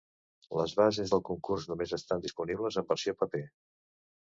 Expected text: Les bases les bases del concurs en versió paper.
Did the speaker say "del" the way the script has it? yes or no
no